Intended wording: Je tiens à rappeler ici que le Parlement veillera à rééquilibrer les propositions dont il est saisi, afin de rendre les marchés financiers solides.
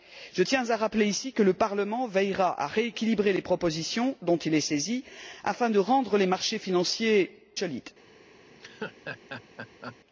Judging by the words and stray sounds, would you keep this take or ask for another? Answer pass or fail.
fail